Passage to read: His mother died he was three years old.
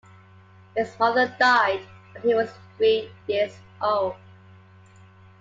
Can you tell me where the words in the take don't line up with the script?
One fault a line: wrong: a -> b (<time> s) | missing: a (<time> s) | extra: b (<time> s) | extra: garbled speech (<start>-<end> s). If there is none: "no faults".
extra: when (2.1 s)